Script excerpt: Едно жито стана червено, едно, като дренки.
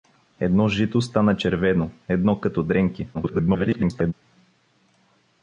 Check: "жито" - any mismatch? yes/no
no